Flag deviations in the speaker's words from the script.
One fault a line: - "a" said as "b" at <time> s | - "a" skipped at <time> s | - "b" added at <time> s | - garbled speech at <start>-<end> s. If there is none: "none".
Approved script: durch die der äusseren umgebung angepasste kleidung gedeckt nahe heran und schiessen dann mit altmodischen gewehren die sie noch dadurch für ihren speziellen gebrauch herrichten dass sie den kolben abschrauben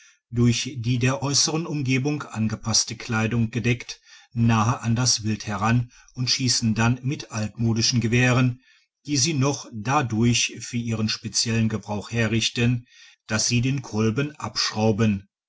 - "an das wild" added at 4.8 s